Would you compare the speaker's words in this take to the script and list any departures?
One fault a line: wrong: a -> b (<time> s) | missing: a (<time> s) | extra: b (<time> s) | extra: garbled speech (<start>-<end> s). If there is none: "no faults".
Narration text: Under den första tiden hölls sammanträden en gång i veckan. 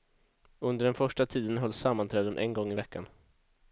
no faults